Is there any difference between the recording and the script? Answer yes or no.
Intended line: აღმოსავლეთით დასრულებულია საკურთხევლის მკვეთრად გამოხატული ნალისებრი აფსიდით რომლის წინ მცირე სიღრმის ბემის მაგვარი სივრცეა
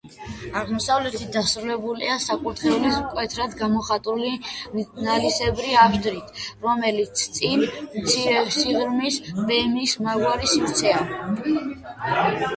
no